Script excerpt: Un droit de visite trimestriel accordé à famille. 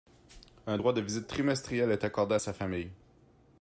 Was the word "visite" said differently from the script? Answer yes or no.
no